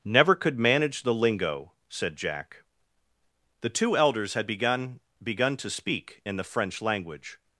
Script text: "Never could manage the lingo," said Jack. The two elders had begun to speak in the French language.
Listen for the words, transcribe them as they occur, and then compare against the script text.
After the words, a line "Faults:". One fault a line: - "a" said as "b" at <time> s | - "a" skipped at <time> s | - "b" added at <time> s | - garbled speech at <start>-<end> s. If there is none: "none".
"Never could manage the lingo," said Jack. The two elders had begun begun to speak in the French language.
Faults:
- "begun" added at 5.2 s